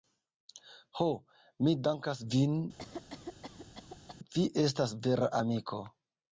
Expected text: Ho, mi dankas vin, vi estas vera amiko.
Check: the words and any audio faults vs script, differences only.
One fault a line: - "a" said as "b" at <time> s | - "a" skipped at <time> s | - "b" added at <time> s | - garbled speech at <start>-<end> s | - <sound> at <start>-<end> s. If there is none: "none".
- cough at 2.8-4.2 s